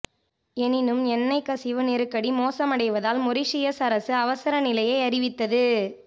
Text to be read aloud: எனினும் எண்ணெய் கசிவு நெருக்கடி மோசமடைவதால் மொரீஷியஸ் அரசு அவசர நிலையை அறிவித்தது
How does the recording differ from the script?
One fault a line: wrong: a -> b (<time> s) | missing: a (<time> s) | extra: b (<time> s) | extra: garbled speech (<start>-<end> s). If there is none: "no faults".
no faults